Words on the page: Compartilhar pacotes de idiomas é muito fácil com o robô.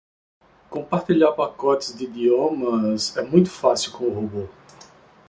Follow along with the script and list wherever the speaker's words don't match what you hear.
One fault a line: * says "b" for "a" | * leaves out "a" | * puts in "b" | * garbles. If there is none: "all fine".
all fine